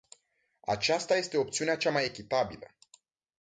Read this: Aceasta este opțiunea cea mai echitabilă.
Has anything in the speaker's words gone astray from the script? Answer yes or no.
no